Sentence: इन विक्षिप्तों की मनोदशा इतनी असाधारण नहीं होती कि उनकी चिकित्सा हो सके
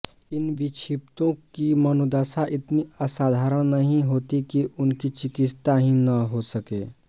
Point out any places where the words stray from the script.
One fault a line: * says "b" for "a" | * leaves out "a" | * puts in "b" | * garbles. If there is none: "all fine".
* puts in "ही न"